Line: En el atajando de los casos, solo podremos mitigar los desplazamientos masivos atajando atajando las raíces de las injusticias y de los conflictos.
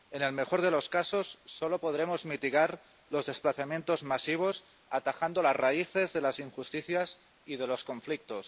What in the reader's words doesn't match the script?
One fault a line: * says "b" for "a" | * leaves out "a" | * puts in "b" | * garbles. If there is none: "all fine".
* says "mejor" for "atajando"
* leaves out "atajando"